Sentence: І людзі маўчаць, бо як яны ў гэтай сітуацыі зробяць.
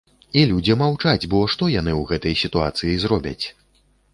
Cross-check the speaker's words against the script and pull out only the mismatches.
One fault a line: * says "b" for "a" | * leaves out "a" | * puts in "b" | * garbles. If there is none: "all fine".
* says "што" for "як"